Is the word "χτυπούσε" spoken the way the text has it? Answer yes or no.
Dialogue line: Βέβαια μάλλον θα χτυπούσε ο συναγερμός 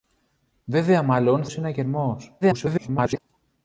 no